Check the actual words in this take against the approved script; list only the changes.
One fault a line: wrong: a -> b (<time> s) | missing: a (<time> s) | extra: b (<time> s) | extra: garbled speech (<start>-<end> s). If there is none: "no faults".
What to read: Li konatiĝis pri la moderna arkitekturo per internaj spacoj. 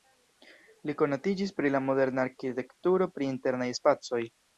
wrong: per -> pri (3.2 s)